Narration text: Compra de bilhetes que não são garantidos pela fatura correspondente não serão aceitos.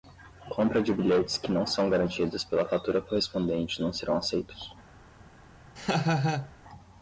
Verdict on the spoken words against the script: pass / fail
pass